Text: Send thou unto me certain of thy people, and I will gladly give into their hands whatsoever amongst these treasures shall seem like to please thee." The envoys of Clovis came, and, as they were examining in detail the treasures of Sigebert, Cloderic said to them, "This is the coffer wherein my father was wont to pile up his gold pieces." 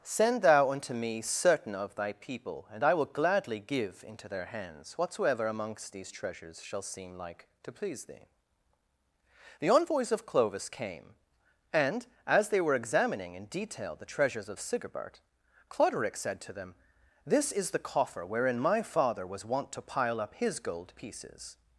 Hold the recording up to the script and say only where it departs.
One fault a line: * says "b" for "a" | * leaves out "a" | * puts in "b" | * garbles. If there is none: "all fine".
all fine